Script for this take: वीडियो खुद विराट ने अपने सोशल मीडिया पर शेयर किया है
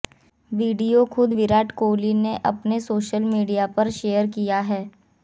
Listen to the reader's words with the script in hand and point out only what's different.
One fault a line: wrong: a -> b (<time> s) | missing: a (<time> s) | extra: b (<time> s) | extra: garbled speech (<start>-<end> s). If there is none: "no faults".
extra: कोहली (1.7 s)